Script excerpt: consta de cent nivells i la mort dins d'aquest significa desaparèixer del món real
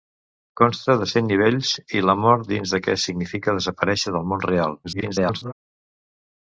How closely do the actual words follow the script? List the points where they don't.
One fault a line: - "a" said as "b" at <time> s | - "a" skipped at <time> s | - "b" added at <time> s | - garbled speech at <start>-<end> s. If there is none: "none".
- garbled speech at 4.8-5.5 s